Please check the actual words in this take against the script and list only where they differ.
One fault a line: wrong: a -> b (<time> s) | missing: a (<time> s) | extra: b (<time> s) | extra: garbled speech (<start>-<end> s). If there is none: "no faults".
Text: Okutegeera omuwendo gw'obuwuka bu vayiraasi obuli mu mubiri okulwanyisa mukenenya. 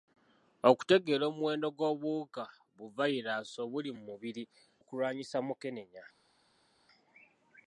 no faults